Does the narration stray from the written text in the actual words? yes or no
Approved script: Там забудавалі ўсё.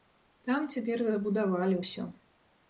yes